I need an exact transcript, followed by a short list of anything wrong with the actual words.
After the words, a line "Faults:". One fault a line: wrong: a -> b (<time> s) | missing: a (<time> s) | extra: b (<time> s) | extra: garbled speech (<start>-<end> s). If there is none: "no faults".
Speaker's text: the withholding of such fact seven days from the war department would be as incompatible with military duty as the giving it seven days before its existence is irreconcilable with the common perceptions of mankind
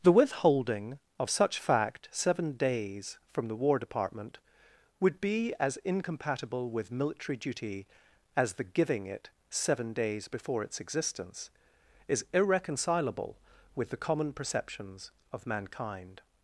the withholding of such fact seven days from the war department would be as incompatible with military duty as the giving it seven days before its existence is irreconcilable with the common perceptions of mankind
Faults:
no faults